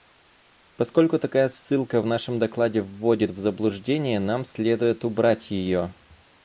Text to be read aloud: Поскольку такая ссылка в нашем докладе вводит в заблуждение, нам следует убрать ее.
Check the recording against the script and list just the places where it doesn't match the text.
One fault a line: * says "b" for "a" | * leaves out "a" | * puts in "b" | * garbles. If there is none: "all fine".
all fine